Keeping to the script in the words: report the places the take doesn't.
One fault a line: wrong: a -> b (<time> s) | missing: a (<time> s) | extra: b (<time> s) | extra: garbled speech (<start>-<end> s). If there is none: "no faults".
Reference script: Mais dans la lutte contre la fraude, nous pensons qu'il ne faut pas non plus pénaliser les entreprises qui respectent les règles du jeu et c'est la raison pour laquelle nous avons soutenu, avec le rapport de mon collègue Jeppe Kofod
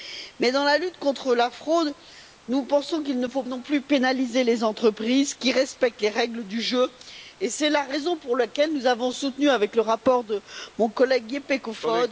missing: pas (3.4 s)